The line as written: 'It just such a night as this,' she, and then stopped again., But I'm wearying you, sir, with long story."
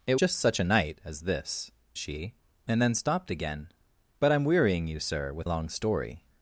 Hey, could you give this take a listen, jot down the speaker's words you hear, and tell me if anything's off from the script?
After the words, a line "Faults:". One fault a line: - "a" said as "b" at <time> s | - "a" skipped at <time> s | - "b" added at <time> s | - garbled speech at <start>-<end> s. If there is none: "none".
'It just such a night as this,' she, and then stopped again., But I'm wearying you, sir, with long story."
Faults:
none